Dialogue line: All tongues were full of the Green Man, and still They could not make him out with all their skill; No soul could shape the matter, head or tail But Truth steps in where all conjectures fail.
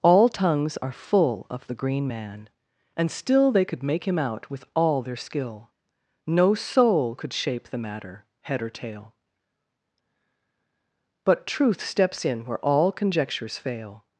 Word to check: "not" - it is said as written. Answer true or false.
false